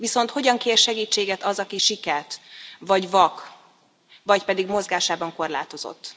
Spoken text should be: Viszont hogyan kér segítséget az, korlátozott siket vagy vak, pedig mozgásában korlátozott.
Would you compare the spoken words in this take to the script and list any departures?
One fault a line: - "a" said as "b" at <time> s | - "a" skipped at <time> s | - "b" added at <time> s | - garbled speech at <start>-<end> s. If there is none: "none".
- "korlátozott" said as "aki" at 1.6 s
- "vagy" added at 4.2 s